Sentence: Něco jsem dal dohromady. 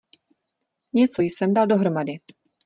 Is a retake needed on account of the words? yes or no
no